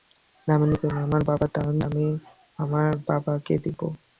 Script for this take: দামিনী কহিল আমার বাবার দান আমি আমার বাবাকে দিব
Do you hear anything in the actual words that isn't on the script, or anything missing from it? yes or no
no